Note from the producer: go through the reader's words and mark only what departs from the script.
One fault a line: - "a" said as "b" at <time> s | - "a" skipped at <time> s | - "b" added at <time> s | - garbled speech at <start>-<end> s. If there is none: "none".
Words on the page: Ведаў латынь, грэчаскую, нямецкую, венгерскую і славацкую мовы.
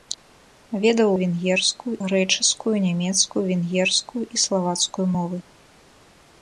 - "латынь" said as "венгерскую" at 1.2 s